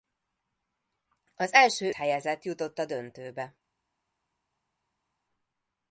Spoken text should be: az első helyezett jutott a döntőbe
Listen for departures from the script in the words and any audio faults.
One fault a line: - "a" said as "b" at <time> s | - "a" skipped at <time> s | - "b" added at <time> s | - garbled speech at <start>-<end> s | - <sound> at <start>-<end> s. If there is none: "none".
none